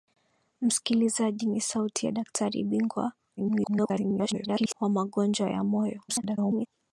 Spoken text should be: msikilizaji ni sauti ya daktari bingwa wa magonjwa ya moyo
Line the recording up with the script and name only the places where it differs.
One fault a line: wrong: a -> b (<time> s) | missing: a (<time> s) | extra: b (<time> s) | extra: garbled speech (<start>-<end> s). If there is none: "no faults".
extra: garbled speech (3.4-4.7 s)
extra: garbled speech (6.1-6.7 s)